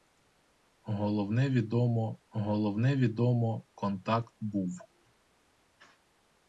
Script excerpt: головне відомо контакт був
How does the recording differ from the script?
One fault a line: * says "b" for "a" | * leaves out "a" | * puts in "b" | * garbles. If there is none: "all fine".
* puts in "головне відомо"